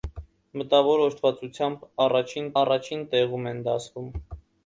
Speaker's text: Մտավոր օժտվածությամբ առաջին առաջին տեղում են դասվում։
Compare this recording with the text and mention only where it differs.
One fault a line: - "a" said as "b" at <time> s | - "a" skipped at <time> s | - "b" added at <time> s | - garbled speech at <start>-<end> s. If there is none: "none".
none